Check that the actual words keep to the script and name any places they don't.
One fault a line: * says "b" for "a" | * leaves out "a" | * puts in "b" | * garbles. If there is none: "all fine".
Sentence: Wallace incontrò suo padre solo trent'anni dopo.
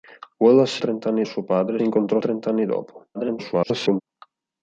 * says "trent'anni" for "incontrò"
* says "incontrò" for "solo"
* garbles